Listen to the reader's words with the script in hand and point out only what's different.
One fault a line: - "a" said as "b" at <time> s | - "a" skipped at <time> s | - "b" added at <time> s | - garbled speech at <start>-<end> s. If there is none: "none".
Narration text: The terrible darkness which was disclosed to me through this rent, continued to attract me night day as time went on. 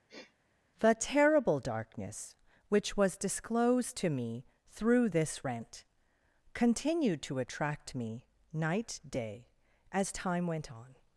none